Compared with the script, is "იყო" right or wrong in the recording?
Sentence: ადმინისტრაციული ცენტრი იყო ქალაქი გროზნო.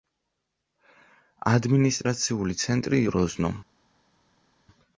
wrong